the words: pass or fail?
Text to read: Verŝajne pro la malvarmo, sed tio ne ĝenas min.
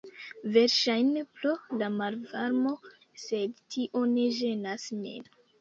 pass